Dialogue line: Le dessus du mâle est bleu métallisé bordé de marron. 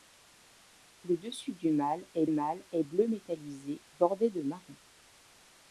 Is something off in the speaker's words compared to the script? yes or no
yes